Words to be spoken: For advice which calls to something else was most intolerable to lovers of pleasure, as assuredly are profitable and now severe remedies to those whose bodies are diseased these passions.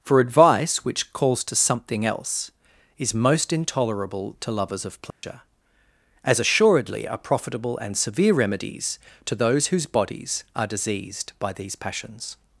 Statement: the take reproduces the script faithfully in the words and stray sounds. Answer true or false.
false